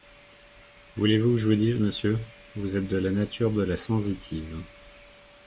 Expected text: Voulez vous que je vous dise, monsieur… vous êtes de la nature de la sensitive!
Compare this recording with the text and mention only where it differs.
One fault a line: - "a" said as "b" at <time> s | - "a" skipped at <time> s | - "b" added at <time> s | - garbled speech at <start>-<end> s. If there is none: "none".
none